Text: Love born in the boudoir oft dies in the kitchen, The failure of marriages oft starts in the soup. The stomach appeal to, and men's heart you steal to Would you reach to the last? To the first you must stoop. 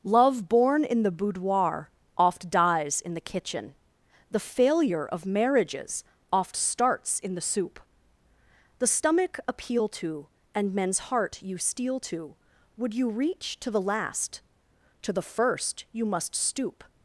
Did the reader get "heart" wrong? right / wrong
right